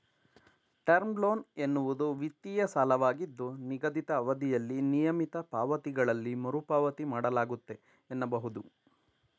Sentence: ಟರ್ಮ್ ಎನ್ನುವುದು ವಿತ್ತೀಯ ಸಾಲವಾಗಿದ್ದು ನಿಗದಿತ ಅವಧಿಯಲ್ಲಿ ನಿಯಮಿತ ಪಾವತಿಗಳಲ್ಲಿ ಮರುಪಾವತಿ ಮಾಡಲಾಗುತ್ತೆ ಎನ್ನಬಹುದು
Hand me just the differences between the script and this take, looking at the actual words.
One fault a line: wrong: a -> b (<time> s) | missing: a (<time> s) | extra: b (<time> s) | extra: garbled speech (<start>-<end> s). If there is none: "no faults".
extra: ಲೋನ್ (1.2 s)